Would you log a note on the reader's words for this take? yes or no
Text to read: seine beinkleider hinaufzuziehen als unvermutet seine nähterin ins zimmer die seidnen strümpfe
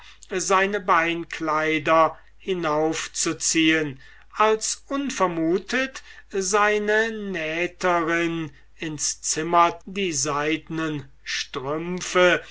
no